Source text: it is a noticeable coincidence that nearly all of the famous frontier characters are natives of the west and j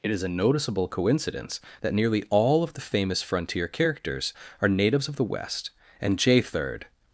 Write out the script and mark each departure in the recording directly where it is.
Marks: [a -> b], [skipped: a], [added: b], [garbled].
it is a noticeable coincidence that nearly all of the famous frontier characters are natives of the west and j [added: third]